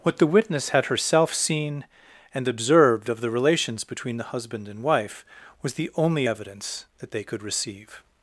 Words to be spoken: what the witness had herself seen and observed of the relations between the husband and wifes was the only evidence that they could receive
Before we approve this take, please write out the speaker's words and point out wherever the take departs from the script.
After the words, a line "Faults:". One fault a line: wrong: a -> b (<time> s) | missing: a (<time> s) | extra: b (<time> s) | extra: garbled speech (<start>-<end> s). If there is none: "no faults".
what the witness had herself seen and observed of the relations between the husband and wife was the only evidence that they could receive
Faults:
wrong: wifes -> wife (4.8 s)